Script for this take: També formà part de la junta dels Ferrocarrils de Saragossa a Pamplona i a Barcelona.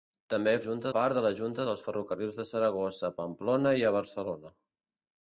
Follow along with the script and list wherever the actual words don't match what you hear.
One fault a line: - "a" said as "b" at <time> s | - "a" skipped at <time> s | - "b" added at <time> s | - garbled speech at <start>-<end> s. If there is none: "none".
- "formà" said as "junta" at 0.7 s